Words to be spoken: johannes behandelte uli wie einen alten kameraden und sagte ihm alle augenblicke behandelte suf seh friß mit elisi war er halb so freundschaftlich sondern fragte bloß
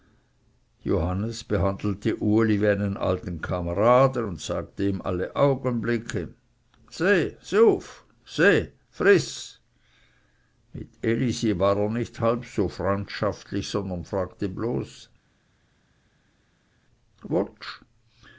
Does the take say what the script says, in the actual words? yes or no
no